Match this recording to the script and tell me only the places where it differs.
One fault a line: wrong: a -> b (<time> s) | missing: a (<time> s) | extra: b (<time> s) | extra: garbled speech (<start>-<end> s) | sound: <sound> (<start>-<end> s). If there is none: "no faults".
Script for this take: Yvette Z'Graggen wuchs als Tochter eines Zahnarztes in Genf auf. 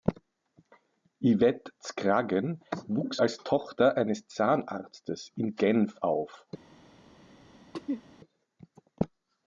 sound: throat clearing (7.7-8.0 s)